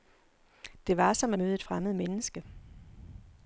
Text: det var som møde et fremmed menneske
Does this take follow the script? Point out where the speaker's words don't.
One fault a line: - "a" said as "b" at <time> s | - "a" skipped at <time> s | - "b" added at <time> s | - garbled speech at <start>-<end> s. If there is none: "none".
none